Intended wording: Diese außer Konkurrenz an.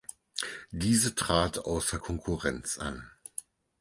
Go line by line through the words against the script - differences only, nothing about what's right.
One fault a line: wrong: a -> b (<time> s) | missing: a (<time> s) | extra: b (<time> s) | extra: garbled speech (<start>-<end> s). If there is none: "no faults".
extra: trat (1.1 s)